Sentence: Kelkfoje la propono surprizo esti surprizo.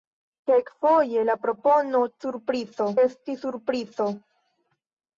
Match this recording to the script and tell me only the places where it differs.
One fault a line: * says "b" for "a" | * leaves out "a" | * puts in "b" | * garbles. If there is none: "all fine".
all fine